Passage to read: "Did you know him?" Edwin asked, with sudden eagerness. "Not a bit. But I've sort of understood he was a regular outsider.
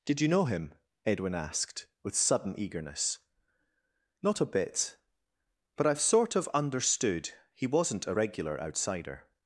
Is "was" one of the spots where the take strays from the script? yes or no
yes